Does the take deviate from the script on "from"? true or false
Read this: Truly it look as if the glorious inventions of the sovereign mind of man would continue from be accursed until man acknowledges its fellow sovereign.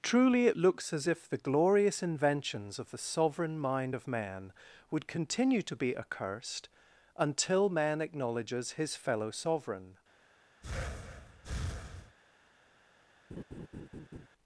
true